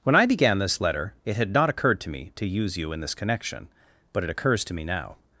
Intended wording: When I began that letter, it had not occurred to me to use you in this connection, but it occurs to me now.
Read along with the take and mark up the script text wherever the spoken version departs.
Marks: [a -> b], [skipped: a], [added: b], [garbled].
When I began [that -> this] letter, it had not occurred to me to use you in this connection, but it occurs to me now.